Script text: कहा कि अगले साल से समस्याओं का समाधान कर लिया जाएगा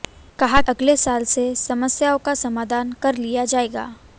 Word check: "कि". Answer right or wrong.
wrong